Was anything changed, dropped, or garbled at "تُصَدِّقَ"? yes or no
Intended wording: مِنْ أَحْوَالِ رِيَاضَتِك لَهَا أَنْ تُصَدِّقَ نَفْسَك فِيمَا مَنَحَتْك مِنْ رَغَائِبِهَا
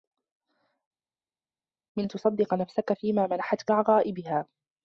no